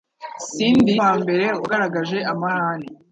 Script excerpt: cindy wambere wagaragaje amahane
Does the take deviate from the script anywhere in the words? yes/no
no